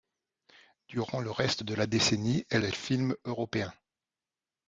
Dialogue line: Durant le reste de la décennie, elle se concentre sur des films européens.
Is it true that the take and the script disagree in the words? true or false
true